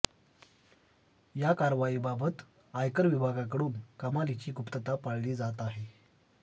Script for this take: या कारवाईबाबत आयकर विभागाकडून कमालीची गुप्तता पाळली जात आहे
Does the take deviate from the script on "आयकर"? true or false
false